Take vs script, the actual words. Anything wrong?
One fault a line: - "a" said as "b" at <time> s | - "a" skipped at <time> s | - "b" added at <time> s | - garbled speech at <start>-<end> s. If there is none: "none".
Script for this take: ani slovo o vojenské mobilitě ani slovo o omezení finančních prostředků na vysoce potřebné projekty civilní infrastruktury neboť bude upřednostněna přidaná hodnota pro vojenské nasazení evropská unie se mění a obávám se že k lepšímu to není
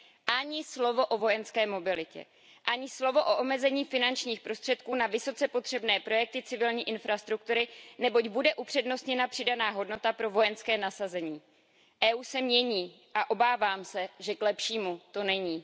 none